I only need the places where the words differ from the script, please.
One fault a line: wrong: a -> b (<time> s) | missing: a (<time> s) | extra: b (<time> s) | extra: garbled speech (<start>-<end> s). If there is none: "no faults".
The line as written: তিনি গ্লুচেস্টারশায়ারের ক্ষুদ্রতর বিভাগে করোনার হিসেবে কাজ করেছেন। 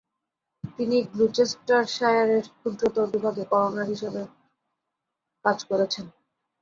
no faults